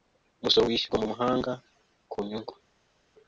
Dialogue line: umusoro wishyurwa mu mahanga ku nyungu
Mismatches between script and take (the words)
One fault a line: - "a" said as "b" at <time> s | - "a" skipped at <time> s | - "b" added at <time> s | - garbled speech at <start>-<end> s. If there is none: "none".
none